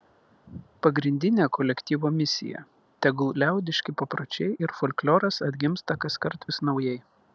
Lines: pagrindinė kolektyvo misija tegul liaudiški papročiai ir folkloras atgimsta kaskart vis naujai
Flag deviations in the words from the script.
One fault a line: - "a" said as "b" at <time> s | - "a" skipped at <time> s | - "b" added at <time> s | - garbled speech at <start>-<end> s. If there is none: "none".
none